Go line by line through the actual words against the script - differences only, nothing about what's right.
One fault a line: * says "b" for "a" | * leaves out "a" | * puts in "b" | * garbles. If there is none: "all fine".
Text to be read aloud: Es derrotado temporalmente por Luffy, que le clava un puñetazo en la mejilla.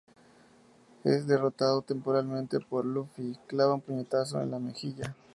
* leaves out "que le"